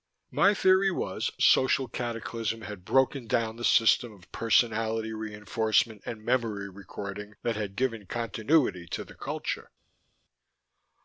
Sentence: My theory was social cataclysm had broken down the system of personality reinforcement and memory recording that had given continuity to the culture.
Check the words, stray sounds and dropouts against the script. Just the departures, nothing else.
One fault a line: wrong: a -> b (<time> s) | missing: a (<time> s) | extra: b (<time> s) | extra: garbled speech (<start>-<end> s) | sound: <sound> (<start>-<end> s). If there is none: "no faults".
no faults